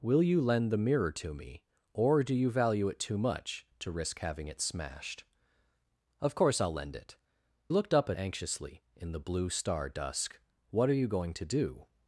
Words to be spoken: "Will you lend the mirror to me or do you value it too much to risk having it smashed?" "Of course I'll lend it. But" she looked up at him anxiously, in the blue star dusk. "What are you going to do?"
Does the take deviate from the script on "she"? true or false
true